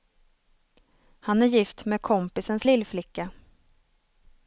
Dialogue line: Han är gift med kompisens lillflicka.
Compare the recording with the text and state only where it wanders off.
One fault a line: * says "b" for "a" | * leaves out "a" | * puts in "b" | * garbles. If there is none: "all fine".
all fine